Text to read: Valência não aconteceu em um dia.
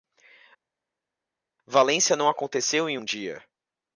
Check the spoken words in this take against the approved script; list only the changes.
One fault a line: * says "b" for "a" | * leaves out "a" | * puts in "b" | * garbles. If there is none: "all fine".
all fine